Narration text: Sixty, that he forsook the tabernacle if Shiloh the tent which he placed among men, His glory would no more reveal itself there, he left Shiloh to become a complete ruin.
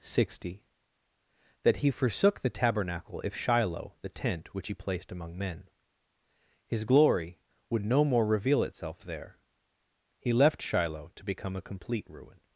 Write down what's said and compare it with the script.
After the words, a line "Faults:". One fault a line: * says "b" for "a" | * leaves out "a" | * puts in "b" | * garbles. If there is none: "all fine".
Sixty, that he forsook the tabernacle if Shiloh the tent which he placed among men, His glory would no more reveal itself there, he left Shiloh to become a complete ruin.
Faults:
all fine